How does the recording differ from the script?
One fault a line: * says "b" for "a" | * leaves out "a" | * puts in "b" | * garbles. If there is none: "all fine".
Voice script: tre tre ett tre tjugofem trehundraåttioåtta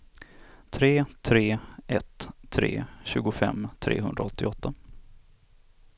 all fine